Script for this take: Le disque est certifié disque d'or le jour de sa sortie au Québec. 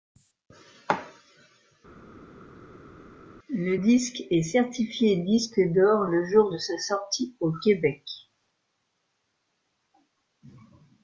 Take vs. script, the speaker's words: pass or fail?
pass